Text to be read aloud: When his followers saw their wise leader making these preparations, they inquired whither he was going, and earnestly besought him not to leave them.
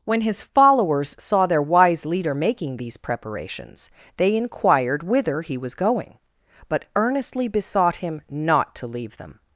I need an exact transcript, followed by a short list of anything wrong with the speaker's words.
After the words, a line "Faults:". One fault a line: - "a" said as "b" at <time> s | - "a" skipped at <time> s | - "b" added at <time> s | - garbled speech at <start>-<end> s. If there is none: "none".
When his followers saw their wise leader making these preparations, they inquired whither he was going, but earnestly besought him not to leave them.
Faults:
- "and" said as "but" at 6.7 s